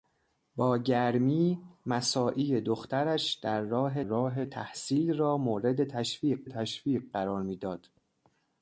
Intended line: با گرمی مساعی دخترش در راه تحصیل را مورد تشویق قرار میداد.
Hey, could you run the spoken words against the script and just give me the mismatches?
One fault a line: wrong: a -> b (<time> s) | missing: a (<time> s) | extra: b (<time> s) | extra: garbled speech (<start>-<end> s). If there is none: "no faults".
extra: راه (4.0 s)
extra: تشویق (6.4 s)